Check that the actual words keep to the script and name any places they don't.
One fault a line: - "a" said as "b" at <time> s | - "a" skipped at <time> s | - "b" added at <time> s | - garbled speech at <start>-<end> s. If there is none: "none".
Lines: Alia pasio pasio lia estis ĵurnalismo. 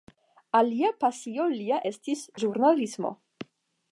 - "pasio" skipped at 1.4 s